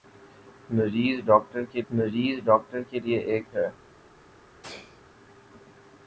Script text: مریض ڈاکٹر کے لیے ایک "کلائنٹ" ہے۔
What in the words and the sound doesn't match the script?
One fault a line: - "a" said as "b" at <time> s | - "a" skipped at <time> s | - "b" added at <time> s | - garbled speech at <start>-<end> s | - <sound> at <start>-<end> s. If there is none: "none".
- "مریض ڈاکٹر کے" added at 1.9 s
- "کلائنٹ" skipped at 3.4 s
- sneeze at 4.6-5.0 s